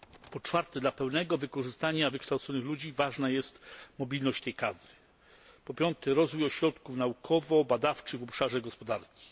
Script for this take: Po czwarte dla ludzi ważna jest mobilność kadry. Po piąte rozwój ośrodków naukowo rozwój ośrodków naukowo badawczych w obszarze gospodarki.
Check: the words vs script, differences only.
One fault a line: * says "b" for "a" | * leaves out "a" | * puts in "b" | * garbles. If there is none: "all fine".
* puts in "pełnego wykorzystania wykształconych"
* puts in "tej"
* leaves out "rozwój ośrodków naukowo"